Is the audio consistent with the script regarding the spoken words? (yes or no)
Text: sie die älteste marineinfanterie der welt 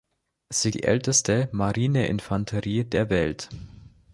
yes